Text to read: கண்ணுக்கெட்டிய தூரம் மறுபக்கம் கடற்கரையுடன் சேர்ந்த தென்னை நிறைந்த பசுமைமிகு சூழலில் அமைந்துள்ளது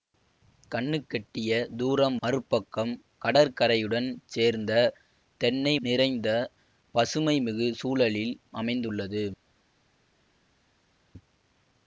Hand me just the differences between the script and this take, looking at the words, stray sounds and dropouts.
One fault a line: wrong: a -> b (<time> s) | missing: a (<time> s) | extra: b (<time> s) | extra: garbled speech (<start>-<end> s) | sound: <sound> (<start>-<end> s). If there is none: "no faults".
no faults